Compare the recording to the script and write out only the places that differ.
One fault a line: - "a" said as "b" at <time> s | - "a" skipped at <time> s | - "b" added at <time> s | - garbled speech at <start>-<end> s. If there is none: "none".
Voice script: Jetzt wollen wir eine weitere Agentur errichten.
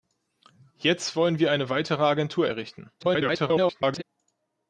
- garbled speech at 3.0-4.0 s